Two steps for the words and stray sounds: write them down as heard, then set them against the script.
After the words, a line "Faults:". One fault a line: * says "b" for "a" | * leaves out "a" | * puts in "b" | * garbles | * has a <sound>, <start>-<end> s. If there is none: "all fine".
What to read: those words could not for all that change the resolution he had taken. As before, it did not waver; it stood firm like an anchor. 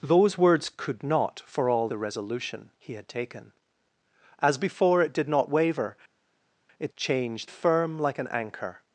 those words could not for all the resolution he had taken. As before, it did not waver; it change firm like an anchor.
Faults:
* leaves out "that change"
* says "change" for "stood"